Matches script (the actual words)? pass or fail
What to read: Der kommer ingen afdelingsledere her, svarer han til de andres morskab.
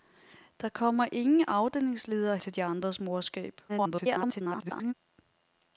fail